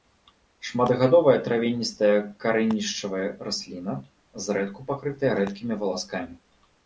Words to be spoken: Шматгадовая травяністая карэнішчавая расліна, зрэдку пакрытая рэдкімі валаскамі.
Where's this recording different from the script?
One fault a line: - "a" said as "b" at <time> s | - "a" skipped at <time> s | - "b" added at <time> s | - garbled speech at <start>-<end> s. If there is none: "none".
none